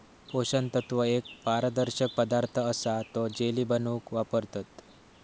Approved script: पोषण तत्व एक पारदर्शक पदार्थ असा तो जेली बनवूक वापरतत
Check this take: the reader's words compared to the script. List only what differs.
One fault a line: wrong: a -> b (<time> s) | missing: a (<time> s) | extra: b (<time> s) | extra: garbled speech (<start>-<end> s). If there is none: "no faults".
no faults